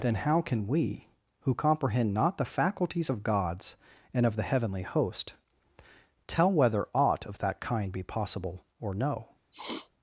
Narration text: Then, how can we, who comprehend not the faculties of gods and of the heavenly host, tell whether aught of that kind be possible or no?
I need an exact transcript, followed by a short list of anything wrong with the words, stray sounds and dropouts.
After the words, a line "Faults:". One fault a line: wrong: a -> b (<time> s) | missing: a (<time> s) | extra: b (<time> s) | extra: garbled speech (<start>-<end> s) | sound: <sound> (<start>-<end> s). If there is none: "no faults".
Then, how can we, who comprehend not the faculties of gods and of the heavenly host, tell whether aught of that kind be possible or no?
Faults:
sound: sniff (9.5-9.9 s)